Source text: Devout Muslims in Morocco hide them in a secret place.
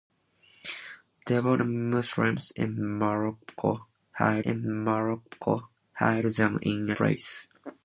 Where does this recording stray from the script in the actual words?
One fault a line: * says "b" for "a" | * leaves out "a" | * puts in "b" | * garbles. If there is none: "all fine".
* puts in "in Morocco hide"
* leaves out "secret"